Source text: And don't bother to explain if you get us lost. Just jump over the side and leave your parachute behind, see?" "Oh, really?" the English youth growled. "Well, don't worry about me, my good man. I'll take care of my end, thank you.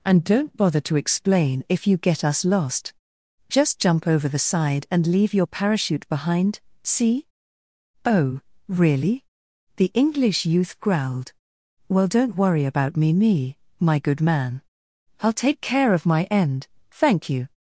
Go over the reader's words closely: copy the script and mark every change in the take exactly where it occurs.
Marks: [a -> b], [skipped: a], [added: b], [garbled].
And don't bother to explain if you get us lost. Just jump over the side and leave your parachute behind, see?" "Oh, really?" the English youth growled. "Well, don't worry about me, [added: me] my good man. I'll take care of my end, thank you.